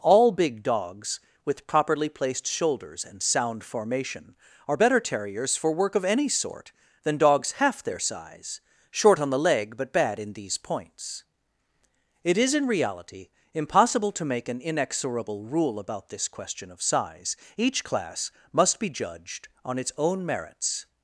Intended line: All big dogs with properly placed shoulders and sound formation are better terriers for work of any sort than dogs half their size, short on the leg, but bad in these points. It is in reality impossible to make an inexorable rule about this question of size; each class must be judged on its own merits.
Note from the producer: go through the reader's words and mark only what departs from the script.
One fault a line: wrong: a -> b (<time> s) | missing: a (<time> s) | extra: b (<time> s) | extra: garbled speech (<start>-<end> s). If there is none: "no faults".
no faults